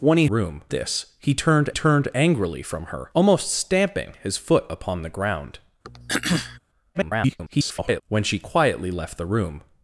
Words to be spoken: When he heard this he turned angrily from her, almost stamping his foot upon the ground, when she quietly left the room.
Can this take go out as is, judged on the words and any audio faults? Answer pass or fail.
fail